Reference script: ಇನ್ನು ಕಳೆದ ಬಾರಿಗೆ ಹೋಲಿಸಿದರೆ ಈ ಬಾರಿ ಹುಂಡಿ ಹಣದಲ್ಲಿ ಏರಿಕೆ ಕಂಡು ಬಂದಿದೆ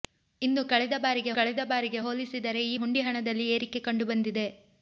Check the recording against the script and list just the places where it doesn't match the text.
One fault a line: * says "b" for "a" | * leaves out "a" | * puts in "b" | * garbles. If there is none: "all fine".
* puts in "ಕಳೆದ ಬಾರಿಗೆ"
* leaves out "ಬಾರಿ"